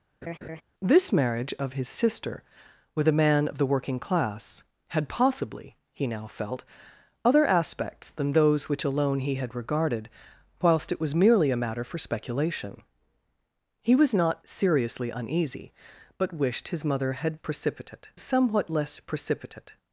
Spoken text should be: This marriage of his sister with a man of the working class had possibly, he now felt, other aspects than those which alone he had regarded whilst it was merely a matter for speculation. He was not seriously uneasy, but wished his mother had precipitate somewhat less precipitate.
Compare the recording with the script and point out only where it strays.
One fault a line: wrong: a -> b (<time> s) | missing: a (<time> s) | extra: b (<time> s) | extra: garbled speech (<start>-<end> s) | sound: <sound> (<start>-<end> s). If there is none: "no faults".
sound: laugh (0.2-0.6 s)